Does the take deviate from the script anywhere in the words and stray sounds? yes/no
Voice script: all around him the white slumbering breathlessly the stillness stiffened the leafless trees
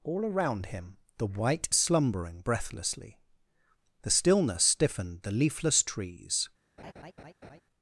yes